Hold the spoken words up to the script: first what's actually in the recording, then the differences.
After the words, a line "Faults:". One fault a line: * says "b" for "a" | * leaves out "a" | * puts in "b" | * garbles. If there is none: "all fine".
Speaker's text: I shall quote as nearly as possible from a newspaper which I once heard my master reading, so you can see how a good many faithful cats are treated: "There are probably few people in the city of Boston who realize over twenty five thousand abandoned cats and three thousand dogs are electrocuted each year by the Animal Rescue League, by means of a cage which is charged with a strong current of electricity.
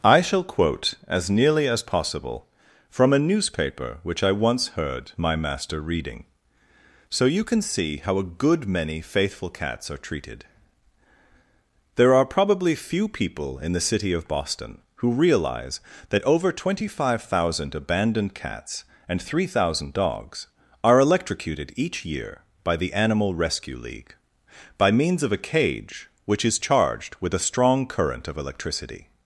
I shall quote as nearly as possible from a newspaper which I once heard my master reading, so you can see how a good many faithful cats are treated: "There are probably few people in the city of Boston who realize that over twenty five thousand abandoned cats and three thousand dogs are electrocuted each year by the Animal Rescue League, by means of a cage which is charged with a strong current of electricity.
Faults:
* puts in "that"